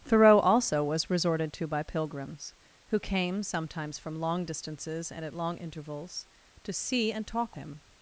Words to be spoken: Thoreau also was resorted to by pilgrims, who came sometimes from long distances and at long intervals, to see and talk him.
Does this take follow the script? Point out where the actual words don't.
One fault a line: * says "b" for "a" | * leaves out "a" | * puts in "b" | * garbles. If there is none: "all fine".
all fine